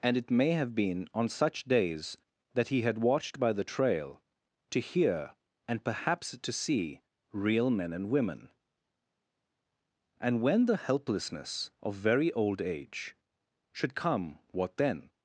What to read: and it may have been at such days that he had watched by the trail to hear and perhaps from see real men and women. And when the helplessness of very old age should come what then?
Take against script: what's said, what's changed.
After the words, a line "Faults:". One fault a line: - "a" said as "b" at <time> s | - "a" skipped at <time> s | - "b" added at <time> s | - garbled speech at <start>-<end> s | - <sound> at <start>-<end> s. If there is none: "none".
and it may have been on such days that he had watched by the trail to hear and perhaps to see real men and women. And when the helplessness of very old age should come what then?
Faults:
- "at" said as "on" at 1.1 s
- "from" said as "to" at 6.4 s